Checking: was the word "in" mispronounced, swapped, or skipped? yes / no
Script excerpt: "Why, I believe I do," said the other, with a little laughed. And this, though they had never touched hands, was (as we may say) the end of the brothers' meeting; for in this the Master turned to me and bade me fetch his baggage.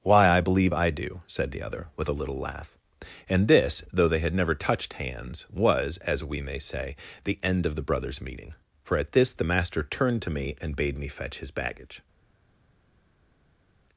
yes